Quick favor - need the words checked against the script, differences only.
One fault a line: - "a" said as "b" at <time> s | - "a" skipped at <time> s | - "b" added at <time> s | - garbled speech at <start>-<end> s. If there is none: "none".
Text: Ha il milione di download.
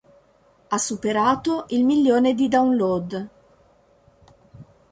- "superato" added at 0.8 s